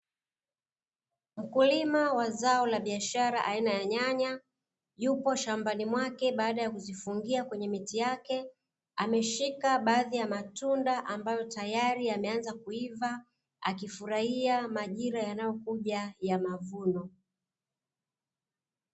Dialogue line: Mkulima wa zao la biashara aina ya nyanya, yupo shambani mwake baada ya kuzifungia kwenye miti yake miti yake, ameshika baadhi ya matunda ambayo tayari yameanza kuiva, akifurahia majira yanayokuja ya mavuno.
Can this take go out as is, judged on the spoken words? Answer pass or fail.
fail